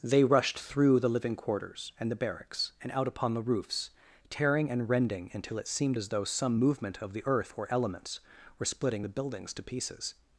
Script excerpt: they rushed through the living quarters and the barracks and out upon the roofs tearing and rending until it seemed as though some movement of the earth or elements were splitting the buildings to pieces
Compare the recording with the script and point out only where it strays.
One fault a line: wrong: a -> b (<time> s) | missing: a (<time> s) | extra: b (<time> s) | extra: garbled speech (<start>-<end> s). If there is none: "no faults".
no faults